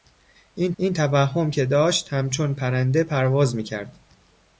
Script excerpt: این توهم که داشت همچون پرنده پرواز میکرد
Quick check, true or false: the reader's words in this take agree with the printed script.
false